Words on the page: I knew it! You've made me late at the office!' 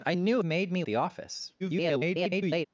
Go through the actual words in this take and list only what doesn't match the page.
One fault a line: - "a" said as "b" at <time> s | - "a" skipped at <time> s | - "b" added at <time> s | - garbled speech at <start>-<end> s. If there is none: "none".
- "it You've" skipped at 0.4 s
- "late at" skipped at 0.8 s
- garbled speech at 1.6-2.7 s